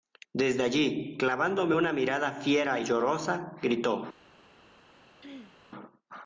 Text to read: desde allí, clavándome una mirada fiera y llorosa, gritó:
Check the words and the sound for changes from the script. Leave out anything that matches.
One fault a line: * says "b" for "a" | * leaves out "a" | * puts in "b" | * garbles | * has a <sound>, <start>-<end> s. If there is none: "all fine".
* has a throat clearing, 5.2-5.6 s